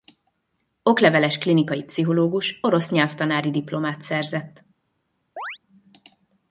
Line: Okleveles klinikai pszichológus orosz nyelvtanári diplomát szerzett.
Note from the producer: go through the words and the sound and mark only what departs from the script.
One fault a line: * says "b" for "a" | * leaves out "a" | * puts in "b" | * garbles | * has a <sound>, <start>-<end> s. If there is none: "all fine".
* has a chirp, 5.4-5.6 s